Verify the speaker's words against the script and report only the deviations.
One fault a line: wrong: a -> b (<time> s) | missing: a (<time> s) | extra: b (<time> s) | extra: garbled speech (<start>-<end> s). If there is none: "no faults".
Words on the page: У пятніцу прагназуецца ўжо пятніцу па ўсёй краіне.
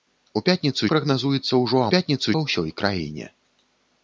no faults